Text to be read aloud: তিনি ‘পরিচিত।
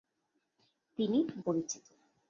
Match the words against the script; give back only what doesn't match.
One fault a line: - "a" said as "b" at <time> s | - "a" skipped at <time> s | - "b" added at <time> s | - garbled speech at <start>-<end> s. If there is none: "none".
none